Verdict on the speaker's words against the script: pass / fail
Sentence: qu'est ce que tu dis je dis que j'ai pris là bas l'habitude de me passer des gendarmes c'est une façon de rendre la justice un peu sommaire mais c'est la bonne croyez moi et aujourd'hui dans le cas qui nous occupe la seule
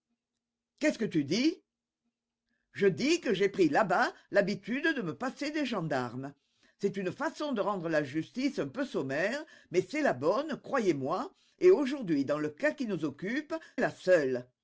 pass